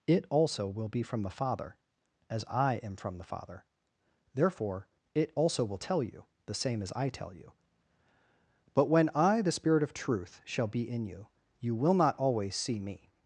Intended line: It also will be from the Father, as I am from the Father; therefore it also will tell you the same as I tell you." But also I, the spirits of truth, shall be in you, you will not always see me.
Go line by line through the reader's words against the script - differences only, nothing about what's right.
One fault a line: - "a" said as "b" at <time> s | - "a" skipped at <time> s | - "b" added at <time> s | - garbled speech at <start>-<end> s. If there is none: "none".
- "also" said as "when" at 8.9 s
- "spirits" said as "spirit" at 9.5 s